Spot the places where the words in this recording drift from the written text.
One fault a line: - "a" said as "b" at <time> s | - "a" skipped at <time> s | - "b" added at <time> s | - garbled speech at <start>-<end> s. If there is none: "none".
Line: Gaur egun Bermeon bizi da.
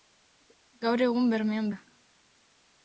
- "bizi" skipped at 1.7 s